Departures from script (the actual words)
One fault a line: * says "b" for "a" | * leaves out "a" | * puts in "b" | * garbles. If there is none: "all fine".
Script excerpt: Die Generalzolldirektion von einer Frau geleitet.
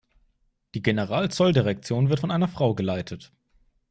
* puts in "wird"